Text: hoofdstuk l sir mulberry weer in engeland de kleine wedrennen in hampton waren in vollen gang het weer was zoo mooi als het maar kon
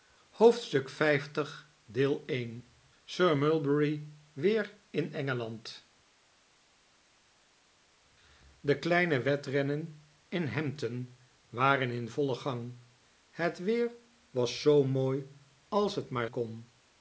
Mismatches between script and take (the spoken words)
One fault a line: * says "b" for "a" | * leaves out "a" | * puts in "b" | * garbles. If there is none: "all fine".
all fine